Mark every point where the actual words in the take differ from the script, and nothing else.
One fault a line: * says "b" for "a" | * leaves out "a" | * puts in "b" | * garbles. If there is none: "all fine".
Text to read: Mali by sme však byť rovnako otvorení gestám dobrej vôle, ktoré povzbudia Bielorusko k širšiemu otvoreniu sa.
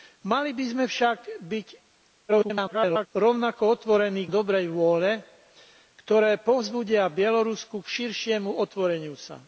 * garbles
* leaves out "gestám"